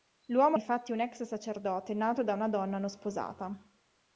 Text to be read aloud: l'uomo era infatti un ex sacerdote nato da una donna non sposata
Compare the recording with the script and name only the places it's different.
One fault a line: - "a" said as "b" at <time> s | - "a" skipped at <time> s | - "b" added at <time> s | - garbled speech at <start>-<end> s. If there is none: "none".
- "era" skipped at 0.6 s